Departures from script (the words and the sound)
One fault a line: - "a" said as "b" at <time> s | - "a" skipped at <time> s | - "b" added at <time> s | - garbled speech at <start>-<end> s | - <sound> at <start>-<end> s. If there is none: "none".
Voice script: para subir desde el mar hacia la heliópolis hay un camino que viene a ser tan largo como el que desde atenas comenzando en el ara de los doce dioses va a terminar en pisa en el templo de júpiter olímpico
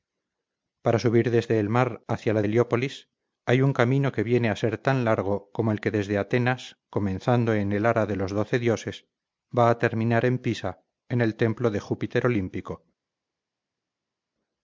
none